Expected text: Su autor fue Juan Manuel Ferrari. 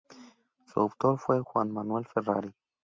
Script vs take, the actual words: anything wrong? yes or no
no